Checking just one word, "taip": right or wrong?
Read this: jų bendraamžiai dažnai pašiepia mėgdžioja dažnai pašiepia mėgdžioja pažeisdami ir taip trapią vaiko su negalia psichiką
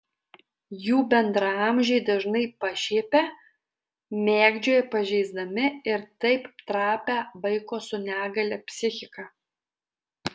right